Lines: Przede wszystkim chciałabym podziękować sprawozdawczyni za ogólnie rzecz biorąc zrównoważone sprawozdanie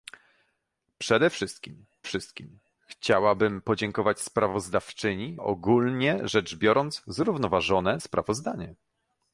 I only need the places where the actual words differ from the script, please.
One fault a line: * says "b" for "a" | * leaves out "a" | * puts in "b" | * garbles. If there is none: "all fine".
* puts in "wszystkim"
* leaves out "za"